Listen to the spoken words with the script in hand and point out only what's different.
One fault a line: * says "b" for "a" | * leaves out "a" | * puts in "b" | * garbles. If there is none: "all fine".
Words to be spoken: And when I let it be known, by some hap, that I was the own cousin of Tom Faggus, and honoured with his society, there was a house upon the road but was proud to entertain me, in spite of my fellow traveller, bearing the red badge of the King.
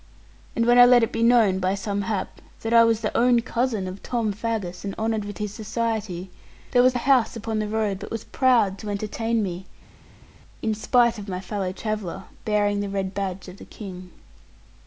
all fine